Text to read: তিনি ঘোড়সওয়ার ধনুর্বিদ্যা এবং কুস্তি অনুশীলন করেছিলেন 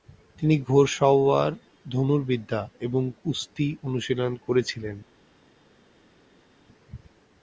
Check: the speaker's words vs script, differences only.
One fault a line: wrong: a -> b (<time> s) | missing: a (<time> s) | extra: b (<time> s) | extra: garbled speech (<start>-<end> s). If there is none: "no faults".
no faults